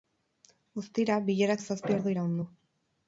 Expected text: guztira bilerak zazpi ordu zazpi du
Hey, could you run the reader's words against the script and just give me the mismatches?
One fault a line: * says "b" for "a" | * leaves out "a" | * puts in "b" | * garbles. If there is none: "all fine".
* says "iraun" for "zazpi"